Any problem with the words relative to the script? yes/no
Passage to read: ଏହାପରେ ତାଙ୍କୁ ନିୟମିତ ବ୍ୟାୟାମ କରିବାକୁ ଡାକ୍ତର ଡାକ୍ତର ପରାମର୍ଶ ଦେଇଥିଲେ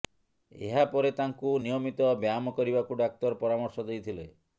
yes